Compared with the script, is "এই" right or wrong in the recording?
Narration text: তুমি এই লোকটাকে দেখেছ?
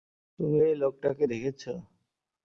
right